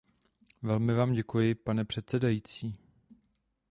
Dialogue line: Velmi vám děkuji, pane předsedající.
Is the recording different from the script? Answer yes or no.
no